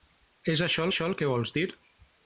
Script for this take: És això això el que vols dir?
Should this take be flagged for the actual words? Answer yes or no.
no